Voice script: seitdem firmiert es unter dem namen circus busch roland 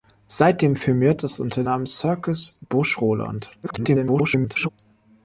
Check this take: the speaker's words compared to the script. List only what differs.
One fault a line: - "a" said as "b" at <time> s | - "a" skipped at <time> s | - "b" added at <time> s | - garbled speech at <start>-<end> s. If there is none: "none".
- "dem" skipped at 1.6 s
- garbled speech at 3.6-4.7 s